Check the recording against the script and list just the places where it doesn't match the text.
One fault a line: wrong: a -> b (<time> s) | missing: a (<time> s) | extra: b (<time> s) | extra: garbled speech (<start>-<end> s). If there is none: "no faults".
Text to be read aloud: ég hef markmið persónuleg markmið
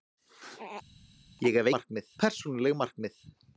no faults